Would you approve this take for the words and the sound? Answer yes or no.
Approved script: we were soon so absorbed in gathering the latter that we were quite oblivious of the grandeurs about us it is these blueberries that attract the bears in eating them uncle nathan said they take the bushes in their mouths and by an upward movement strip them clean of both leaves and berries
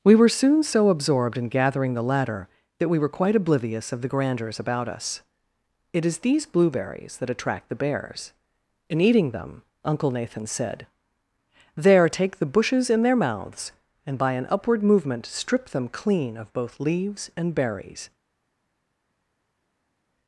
no